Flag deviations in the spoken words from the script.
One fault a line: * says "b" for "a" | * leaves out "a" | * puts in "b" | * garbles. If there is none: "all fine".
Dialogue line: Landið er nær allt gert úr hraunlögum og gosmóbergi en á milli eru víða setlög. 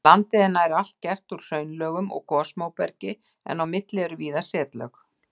all fine